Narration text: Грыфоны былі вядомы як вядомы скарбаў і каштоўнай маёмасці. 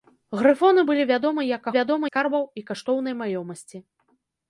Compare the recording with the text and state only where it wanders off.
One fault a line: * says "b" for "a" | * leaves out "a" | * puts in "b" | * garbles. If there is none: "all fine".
all fine